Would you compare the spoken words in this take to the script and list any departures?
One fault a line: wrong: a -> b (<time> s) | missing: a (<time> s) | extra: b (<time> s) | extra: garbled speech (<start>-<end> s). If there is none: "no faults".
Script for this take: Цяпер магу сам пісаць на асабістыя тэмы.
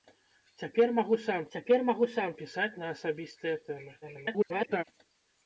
extra: цяпер магу сам (1.5 s)
extra: garbled speech (4.0-4.8 s)